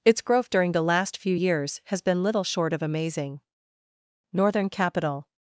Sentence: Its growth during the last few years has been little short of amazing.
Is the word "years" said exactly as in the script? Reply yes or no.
yes